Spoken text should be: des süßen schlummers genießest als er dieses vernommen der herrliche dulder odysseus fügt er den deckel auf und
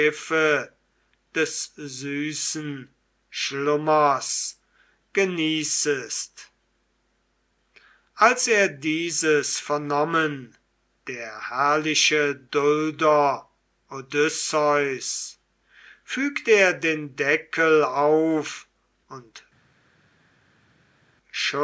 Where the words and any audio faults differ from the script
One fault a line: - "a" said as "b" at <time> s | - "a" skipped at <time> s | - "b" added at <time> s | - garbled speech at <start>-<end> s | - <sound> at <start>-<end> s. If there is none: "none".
none